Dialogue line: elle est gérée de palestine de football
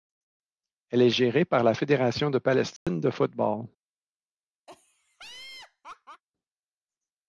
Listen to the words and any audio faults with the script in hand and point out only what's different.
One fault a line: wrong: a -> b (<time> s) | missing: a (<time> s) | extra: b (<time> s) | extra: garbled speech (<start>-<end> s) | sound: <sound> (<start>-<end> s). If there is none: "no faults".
extra: par la fédération (1.4 s)
sound: dropout (2.8-2.9 s)
sound: laugh (4.7-6.2 s)